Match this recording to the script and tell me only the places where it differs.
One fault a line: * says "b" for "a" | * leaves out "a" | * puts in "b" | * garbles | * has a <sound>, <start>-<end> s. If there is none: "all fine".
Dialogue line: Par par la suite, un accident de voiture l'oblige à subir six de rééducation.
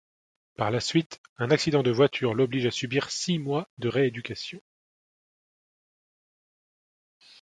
* leaves out "par"
* puts in "mois"